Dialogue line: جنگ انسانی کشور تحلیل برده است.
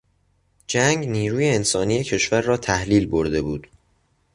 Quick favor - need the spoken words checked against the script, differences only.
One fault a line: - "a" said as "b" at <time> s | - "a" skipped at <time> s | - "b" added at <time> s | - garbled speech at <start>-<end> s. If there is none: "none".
- "نیروی" added at 1.1 s
- "را" added at 2.4 s
- "است" said as "بود" at 3.4 s